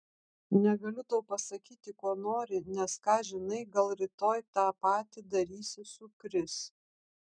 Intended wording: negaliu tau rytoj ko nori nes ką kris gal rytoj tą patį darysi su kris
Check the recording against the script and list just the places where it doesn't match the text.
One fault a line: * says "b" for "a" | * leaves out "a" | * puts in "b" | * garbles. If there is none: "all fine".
* says "pasakyti" for "rytoj"
* says "žinai" for "kris"